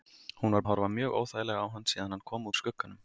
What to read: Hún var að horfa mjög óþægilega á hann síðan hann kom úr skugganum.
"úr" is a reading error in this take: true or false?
false